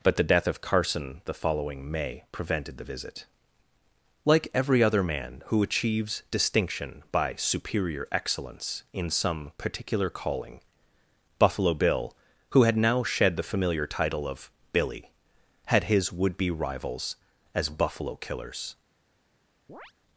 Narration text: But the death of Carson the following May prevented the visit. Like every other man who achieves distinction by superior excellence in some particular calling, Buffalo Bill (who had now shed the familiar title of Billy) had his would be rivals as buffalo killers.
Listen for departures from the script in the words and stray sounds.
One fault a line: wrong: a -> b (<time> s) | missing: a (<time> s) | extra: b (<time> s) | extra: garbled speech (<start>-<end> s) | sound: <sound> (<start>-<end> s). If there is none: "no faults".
sound: chirp (19.7-19.9 s)